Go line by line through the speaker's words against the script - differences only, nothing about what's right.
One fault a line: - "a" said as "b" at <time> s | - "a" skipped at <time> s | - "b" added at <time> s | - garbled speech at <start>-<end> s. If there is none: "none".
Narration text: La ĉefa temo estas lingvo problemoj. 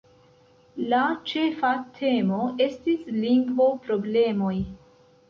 - "estas" said as "estis" at 2.7 s